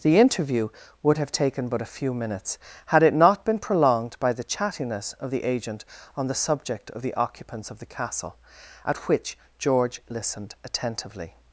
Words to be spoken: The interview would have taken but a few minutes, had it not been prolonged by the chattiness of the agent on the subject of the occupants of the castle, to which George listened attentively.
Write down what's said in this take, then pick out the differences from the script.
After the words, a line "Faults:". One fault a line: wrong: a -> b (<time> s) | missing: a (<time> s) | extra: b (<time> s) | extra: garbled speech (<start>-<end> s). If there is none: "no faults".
The interview would have taken but a few minutes, had it not been prolonged by the chattiness of the agent on the subject of the occupants of the castle, at which George listened attentively.
Faults:
wrong: to -> at (8.8 s)